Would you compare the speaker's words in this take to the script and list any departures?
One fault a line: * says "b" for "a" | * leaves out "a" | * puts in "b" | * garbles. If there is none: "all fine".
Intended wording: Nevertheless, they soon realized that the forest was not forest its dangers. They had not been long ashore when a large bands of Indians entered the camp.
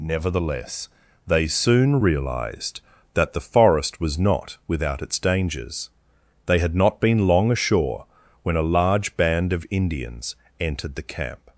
* says "without" for "forest"
* says "band" for "bands"